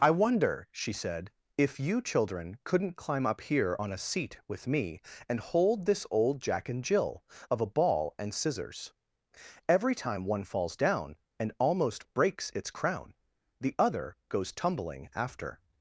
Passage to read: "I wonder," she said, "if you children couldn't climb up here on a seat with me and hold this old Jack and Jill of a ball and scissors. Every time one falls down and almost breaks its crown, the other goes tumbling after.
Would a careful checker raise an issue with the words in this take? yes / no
no